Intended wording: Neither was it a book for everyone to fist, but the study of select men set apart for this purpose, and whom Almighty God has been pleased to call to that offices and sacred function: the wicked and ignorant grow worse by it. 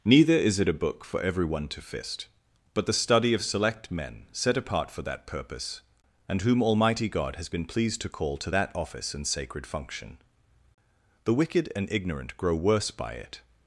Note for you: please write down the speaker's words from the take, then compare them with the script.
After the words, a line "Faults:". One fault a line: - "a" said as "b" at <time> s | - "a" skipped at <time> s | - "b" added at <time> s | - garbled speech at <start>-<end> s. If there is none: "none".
Neither is it a book for everyone to fist, but the study of select men set apart for that purpose, and whom Almighty God has been pleased to call to that office and sacred function: the wicked and ignorant grow worse by it.
Faults:
- "was" said as "is" at 0.3 s
- "this" said as "that" at 5.0 s
- "offices" said as "office" at 8.8 s